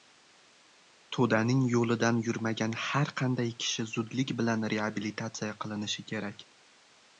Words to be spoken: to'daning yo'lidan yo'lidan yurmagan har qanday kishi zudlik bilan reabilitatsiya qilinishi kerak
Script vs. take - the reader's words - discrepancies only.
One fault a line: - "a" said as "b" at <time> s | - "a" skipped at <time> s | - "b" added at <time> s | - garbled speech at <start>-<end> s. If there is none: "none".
- "yo'lidan" skipped at 2.2 s